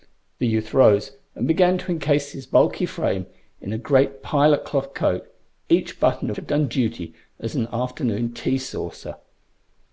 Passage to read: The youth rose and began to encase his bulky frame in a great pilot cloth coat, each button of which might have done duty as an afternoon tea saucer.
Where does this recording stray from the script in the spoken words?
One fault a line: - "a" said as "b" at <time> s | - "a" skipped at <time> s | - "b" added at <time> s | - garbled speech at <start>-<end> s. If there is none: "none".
- "of which might" skipped at 6.3 s